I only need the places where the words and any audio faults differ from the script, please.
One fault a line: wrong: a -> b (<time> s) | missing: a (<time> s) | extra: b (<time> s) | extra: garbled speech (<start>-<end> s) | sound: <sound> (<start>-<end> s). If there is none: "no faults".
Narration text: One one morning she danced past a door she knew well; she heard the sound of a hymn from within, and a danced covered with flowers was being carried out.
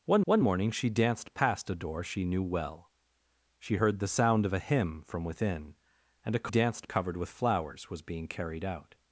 no faults